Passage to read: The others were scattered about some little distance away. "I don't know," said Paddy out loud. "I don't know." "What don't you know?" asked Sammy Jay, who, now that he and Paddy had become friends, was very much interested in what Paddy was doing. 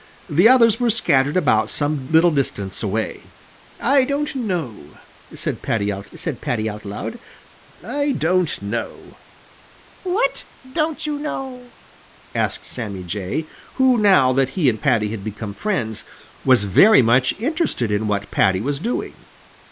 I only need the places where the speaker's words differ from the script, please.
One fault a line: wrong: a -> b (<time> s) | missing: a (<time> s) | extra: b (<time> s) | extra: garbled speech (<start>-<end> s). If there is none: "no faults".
extra: said Paddy out (6.2 s)